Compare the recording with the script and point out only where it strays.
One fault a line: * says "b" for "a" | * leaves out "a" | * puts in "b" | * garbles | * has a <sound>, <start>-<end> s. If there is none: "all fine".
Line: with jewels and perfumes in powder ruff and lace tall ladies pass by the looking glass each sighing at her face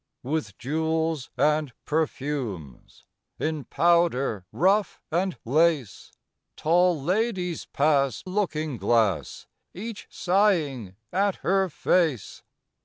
* leaves out "by the"